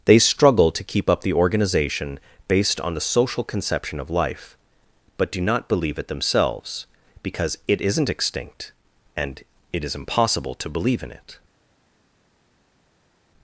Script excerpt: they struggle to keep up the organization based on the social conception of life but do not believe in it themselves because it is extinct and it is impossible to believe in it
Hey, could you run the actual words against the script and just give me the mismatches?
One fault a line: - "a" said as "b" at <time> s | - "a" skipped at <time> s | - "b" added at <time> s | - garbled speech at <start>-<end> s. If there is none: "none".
- "in" skipped at 6.0 s
- "is" said as "isn't" at 7.8 s